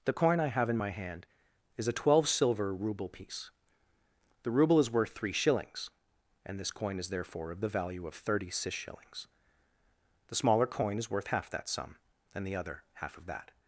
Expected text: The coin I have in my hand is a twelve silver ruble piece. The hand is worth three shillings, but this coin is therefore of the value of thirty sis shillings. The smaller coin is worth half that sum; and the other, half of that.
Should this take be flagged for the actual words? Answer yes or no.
yes